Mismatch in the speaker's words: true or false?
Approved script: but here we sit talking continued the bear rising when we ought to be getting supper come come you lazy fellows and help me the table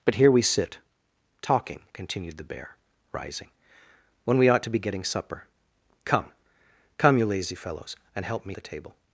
false